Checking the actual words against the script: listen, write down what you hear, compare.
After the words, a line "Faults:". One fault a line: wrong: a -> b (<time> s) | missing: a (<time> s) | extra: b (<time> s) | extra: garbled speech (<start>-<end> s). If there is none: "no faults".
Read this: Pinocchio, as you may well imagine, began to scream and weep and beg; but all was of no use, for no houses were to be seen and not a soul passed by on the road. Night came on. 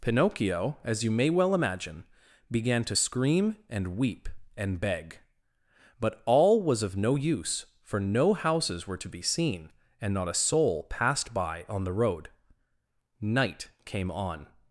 Pinocchio, as you may well imagine, began to scream and weep and beg; but all was of no use, for no houses were to be seen and not a soul passed by on the road. Night came on.
Faults:
no faults